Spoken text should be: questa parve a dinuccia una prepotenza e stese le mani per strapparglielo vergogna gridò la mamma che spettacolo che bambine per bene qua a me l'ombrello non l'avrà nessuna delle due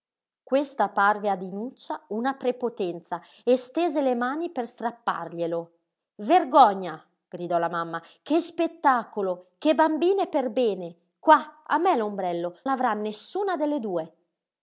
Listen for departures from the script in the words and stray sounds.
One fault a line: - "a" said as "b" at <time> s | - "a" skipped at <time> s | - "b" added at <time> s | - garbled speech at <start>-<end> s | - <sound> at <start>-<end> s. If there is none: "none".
- "non" skipped at 12.6 s